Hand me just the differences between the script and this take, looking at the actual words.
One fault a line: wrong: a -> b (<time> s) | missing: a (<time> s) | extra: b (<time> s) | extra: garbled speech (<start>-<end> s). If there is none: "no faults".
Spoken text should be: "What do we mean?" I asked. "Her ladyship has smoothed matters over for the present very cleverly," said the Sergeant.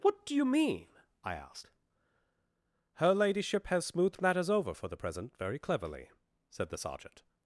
wrong: we -> you (0.3 s)